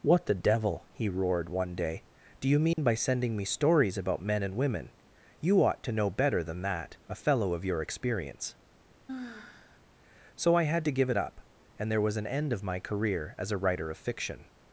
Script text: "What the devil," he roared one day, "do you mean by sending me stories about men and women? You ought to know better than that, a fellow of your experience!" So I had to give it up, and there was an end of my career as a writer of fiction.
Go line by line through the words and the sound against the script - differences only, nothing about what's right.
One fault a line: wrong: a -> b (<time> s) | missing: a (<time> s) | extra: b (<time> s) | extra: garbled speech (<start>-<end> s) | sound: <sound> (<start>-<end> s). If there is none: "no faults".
sound: dropout (2.7-2.8 s)
sound: sigh (9.1-9.8 s)